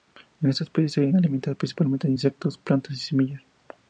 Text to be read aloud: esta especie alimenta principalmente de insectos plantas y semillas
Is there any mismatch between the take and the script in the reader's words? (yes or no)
yes